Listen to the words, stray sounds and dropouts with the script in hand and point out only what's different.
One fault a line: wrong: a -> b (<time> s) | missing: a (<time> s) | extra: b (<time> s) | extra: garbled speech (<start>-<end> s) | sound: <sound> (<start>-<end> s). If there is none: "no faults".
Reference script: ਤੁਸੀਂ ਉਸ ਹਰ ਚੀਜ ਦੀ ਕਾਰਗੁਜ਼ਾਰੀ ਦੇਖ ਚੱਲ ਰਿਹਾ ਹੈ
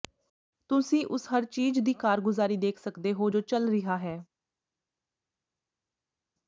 extra: ਸਕਦੇ ਹੋ ਜੋ (2.8 s)